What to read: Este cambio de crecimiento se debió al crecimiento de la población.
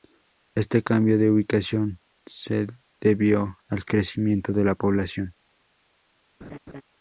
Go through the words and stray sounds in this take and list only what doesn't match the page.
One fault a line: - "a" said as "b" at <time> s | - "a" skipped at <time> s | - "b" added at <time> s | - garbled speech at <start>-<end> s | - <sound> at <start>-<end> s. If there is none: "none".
- "crecimiento" said as "ubicación" at 1.3 s
- laugh at 6.4-6.8 s